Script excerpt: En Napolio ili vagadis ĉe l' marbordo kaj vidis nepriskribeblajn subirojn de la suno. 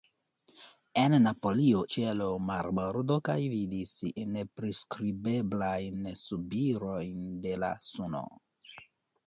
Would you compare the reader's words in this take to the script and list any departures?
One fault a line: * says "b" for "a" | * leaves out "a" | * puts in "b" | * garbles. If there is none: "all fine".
* leaves out "ili vagadis"